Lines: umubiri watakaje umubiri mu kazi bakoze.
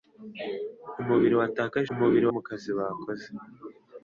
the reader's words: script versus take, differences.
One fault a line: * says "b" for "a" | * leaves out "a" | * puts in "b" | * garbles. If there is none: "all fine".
all fine